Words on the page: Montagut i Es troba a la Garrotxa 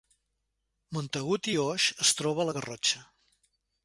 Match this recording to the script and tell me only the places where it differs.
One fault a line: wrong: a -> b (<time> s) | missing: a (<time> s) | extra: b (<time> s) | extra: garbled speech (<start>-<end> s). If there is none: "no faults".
extra: Oix (1.6 s)